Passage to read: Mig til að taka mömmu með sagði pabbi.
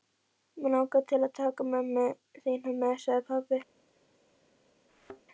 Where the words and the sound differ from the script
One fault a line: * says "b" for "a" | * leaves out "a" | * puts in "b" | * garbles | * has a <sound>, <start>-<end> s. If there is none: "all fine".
* puts in "langar"
* puts in "þína"
* has a thud, 4.9-5.2 s